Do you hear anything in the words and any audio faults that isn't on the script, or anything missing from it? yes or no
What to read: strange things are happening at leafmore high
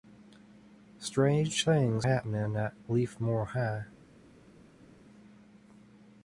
yes